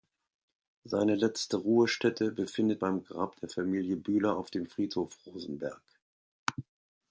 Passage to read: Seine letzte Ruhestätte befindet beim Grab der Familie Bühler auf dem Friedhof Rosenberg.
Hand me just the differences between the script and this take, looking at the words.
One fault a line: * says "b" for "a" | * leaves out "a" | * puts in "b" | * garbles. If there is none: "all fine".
all fine